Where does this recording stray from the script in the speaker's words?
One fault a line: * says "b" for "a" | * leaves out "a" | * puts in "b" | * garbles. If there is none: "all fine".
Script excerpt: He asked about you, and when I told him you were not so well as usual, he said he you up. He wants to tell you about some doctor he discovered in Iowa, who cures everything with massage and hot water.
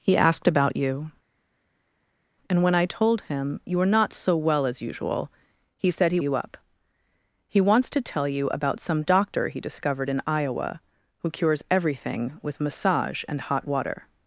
all fine